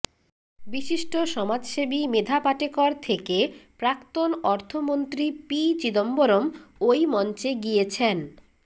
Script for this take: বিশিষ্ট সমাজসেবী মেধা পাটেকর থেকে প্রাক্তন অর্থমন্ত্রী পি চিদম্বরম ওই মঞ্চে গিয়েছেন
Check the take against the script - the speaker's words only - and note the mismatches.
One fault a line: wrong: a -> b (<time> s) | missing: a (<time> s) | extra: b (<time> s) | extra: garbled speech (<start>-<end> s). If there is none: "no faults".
no faults